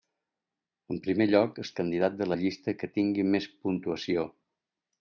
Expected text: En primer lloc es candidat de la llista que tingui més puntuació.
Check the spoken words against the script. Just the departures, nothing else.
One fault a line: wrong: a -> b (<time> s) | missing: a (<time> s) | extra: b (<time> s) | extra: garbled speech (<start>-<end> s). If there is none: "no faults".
no faults